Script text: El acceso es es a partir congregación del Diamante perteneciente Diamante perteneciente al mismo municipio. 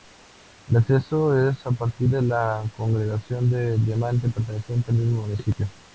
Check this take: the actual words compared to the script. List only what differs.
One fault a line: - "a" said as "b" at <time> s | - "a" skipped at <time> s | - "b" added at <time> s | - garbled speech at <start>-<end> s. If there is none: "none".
- "es" skipped at 1.6 s
- "de la" added at 2.1 s
- "Diamante perteneciente" skipped at 4.9 s